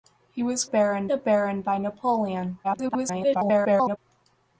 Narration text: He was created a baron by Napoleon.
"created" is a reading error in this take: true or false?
true